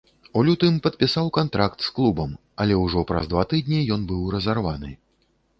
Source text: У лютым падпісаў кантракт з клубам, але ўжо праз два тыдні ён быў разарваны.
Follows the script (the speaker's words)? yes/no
yes